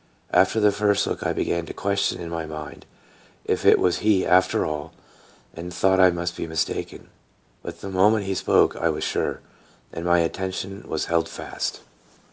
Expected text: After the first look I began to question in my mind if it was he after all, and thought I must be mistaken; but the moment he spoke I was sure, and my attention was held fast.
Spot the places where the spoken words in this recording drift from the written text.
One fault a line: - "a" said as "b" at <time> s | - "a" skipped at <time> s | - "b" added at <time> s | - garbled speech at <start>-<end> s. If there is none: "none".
none